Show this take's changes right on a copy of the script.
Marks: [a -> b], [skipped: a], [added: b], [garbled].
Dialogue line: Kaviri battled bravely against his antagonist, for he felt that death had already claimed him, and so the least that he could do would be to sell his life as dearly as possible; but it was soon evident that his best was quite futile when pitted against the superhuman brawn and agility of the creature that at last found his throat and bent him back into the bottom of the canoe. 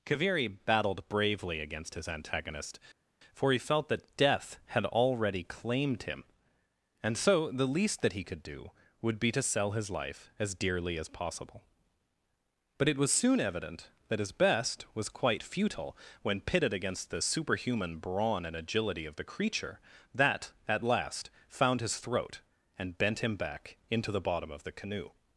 Kaviri battled bravely against his antagonist, for he felt that death had already claimed him, and so the least that he could do would be to sell his life as dearly as possible; but it was soon evident that his best was quite futile when pitted against the superhuman brawn and agility of the creature that at last found his throat and bent him back into the bottom of the canoe.